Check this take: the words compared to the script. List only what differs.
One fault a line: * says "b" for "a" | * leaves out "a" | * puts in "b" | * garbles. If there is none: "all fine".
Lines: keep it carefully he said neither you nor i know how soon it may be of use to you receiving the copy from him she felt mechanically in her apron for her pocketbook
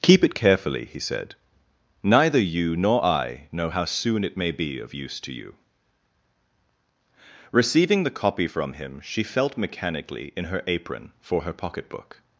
all fine